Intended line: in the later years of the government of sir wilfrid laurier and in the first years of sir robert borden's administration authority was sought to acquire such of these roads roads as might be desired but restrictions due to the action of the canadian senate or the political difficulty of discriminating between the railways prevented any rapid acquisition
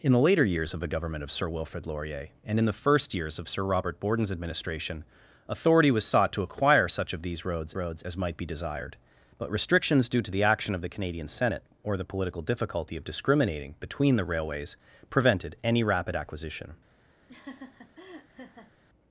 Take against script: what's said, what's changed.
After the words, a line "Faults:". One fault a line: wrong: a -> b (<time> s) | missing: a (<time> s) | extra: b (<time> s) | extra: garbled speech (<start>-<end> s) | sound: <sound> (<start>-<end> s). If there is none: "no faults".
in the later years of the government of sir wilfrid laurier and in the first years of sir robert borden's administration authority was sought to acquire such of these roads roads as might be desired but restrictions due to the action of the canadian senate or the political difficulty of discriminating between the railways prevented any rapid acquisition
Faults:
sound: laugh (17.3-18.7 s)